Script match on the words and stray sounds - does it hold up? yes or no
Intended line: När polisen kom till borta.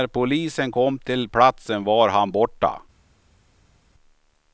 no